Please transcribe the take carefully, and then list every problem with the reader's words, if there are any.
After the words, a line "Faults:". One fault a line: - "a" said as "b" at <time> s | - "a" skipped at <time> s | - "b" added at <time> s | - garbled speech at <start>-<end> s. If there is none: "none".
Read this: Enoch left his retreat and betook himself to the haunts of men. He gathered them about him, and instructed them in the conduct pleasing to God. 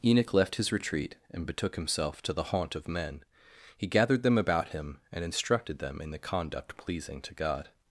Enoch left his retreat and betook himself to the haunt of men. He gathered them about him, and instructed them in the conduct pleasing to God.
Faults:
- "haunts" said as "haunt" at 2.5 s